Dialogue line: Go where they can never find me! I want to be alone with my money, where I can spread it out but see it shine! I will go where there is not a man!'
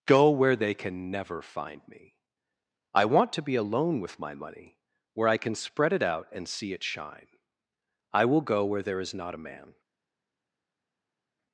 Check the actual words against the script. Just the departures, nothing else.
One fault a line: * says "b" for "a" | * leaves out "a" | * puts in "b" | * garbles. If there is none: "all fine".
* says "and" for "but"